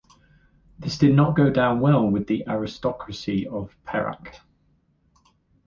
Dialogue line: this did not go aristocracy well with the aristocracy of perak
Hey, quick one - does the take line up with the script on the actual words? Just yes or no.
no